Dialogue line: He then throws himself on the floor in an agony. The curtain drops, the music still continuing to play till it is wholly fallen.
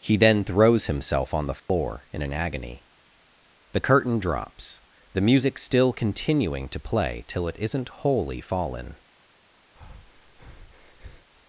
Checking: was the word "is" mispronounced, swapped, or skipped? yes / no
yes